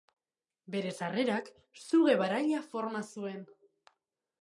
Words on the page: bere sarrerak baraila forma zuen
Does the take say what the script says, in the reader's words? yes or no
no